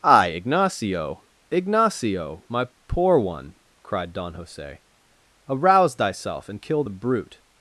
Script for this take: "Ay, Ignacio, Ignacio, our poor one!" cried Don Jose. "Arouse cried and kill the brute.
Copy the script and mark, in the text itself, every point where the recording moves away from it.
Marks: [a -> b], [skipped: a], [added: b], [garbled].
"Ay, Ignacio, Ignacio, [our -> my] poor one!" cried Don Jose. "Arouse [cried -> thyself] and kill the brute.